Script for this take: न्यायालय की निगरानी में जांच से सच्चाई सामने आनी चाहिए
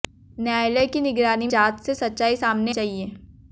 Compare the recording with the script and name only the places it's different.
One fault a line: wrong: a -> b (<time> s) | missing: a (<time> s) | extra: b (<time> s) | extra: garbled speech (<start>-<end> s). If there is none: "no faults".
missing: में (1.5 s)
missing: आनी (2.7 s)